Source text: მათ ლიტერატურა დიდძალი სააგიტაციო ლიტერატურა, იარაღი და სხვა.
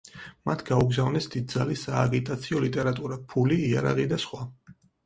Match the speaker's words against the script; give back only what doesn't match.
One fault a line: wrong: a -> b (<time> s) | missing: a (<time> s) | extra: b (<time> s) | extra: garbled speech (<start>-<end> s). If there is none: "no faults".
wrong: ლიტერატურა -> გაუგზავნეს (0.7 s)
extra: ფული (3.4 s)